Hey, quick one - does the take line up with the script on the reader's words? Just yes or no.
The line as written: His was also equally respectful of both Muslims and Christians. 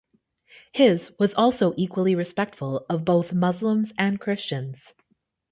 yes